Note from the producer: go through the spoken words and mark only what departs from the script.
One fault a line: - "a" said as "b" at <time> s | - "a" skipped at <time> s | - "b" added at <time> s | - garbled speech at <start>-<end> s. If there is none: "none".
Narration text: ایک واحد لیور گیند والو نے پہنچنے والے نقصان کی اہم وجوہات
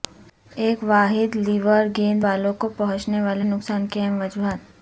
- "نے" said as "کو" at 2.5 s